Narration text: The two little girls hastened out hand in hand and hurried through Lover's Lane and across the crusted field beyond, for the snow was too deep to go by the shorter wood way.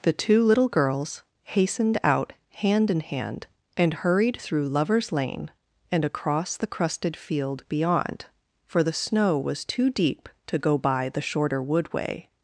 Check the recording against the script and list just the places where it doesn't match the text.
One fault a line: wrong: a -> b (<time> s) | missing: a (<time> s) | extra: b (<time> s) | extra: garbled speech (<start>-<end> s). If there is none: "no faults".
no faults